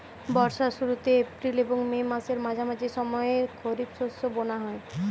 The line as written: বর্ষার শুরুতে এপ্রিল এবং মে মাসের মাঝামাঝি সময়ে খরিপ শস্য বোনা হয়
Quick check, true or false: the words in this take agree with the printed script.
true